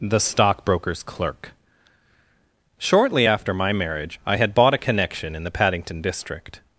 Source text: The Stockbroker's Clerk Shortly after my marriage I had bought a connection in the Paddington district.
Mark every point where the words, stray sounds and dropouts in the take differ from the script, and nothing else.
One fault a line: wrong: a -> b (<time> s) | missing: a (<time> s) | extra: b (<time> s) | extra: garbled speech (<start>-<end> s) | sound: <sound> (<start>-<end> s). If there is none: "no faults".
no faults